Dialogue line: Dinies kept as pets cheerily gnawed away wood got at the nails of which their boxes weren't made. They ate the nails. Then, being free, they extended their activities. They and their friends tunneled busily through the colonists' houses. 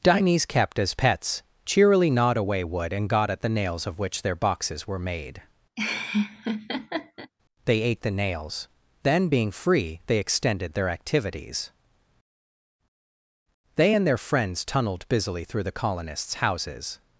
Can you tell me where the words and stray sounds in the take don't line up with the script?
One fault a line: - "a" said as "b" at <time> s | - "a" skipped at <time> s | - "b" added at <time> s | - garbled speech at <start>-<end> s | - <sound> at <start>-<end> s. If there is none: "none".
- "and" added at 2.9 s
- "weren't" said as "were" at 4.9 s
- laugh at 5.8-7.3 s